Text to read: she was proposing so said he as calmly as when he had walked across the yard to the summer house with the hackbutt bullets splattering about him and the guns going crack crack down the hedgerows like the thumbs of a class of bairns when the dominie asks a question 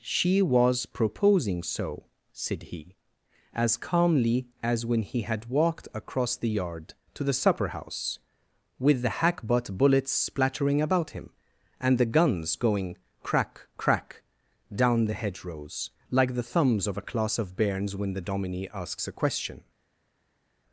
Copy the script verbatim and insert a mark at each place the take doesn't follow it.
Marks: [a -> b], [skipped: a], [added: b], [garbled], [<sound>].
she was proposing so said he as calmly as when he had walked across the yard to the [summer -> supper] house with the hackbutt bullets splattering about him and the guns going crack crack down the hedgerows like the thumbs of a class of bairns when the dominie asks a question